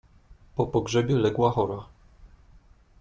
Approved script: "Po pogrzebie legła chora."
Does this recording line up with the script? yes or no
yes